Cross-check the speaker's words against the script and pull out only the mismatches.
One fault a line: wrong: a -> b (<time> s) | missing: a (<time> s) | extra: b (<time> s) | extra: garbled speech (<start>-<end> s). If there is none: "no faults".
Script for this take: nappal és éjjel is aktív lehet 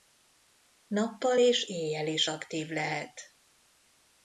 no faults